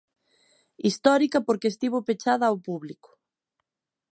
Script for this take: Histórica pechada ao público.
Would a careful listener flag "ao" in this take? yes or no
no